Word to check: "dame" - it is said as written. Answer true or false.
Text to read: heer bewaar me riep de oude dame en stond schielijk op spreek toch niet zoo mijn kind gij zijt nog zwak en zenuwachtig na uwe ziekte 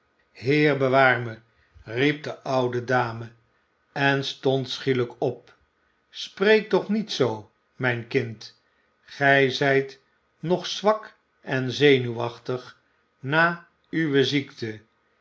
true